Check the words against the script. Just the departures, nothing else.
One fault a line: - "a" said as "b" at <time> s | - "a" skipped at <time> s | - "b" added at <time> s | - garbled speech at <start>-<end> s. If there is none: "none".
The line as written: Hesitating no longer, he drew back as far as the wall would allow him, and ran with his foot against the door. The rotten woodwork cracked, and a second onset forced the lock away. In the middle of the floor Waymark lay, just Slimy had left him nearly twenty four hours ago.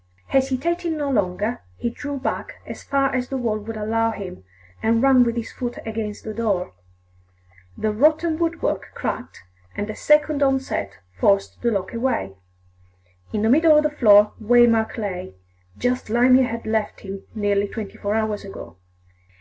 none